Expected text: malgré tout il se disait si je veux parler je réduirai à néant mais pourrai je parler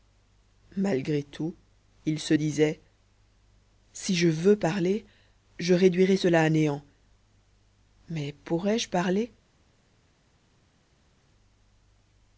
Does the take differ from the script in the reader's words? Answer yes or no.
yes